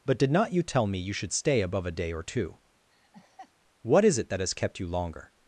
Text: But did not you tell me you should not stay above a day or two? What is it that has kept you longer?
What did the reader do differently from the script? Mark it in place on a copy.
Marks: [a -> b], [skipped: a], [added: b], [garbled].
But did not you tell me you should [skipped: not] stay above a day or two? What is it that has kept you longer?